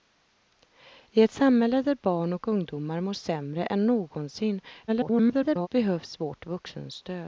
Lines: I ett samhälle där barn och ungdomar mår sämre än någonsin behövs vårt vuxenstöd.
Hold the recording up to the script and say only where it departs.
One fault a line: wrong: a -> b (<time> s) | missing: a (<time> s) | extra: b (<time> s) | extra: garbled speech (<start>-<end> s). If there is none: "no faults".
extra: garbled speech (4.9-5.7 s)